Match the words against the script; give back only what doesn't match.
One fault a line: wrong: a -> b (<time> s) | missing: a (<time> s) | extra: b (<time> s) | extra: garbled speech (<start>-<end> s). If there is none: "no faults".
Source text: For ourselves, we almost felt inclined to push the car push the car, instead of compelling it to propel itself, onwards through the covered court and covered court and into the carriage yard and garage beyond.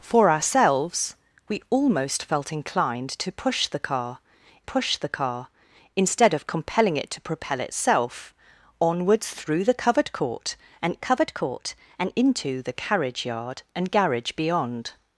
no faults